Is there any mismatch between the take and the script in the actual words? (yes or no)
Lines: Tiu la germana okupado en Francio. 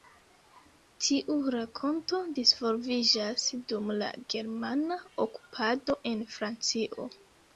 yes